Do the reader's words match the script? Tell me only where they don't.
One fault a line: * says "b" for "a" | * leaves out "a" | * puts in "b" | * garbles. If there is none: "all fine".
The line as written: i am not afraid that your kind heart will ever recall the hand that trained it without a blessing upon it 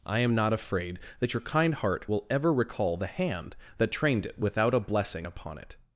all fine